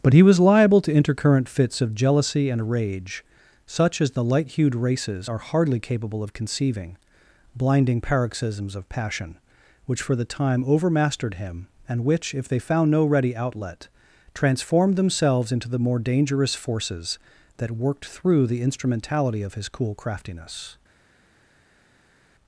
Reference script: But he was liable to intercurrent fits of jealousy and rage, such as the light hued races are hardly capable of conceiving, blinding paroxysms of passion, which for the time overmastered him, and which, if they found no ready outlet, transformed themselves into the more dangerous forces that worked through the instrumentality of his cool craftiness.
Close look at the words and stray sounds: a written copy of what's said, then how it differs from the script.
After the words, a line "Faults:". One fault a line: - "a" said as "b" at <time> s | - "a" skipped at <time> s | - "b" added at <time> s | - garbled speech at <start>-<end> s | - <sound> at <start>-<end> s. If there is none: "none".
But he was liable to intercurrent fits of jealousy and rage, such as the light hued races are hardly capable of conceiving, blinding paroxysms of passion, which for the time overmastered him, and which, if they found no ready outlet, transformed themselves into the more dangerous forces that worked through the instrumentality of his cool craftiness.
Faults:
none